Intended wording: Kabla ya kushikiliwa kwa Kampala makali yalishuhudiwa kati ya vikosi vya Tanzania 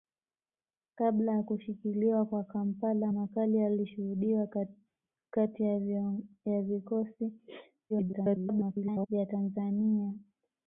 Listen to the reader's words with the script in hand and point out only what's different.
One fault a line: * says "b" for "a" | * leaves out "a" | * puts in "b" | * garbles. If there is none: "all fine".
* garbles